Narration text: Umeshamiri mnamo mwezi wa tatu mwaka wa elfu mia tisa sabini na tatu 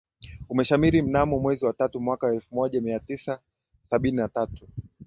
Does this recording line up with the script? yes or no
no